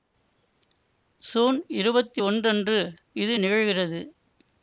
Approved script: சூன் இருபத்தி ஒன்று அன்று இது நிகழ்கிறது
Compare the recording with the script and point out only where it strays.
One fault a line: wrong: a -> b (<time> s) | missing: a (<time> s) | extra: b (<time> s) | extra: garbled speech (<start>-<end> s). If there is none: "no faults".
no faults